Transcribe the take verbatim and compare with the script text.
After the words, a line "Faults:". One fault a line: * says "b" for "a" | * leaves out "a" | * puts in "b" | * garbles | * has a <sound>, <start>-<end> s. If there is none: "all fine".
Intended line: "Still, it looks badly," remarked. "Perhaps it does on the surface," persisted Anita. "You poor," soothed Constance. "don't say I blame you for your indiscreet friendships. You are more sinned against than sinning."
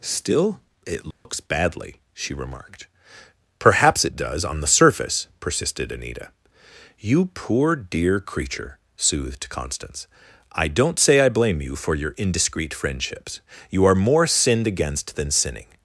"Still, it looks badly," she remarked. "Perhaps it does on the surface," persisted Anita. "You poor dear creature," soothed Constance. "I don't say I blame you for your indiscreet friendships. You are more sinned against than sinning."
Faults:
* has a dropout, 1.1-1.3 s
* puts in "she"
* puts in "dear creature"
* puts in "I"